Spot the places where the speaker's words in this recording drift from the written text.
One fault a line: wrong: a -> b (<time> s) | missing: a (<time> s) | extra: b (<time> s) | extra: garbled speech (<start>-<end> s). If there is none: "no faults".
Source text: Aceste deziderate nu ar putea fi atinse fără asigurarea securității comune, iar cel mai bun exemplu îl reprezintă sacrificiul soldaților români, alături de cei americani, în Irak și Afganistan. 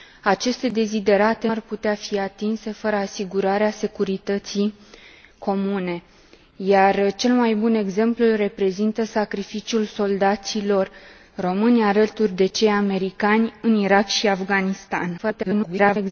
missing: nu (1.5 s)
extra: garbled speech (15.2-16.1 s)